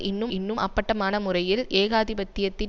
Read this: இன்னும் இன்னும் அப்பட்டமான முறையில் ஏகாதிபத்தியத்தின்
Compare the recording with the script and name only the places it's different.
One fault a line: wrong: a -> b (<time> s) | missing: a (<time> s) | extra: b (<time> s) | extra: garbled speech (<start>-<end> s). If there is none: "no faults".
no faults